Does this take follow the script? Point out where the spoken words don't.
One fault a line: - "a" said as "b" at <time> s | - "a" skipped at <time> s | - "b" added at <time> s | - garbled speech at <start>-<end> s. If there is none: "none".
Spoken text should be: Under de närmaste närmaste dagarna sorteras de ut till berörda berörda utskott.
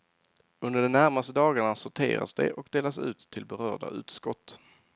- "närmaste" skipped at 1.3 s
- "och delas" added at 2.5 s
- "berörda" skipped at 3.9 s